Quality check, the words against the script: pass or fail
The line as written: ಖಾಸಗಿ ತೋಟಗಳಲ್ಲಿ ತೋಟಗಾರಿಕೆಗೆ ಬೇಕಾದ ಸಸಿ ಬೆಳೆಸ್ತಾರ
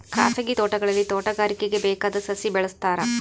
pass